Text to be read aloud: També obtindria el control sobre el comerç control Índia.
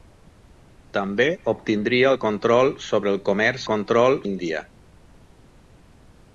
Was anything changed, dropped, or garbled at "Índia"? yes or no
no